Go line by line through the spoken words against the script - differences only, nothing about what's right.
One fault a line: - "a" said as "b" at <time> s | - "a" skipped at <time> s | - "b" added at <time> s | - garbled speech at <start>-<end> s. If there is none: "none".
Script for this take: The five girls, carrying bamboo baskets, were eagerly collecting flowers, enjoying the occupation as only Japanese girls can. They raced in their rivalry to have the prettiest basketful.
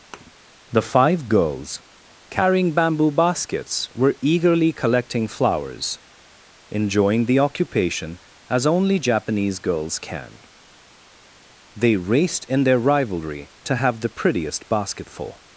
none